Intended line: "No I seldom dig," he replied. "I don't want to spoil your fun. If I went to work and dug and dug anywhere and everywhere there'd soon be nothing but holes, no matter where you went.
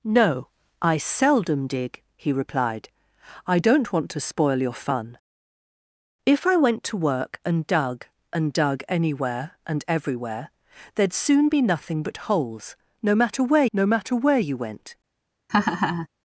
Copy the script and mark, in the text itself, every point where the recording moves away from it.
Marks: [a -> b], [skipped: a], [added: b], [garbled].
"No I seldom dig," he replied. "I don't want to spoil your fun. If I went to work and dug and dug anywhere and everywhere there'd soon be nothing but holes, no matter where [added: no matter where] you went.